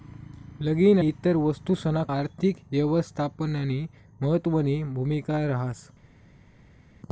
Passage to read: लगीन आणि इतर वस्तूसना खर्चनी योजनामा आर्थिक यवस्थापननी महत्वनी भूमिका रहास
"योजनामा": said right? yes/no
no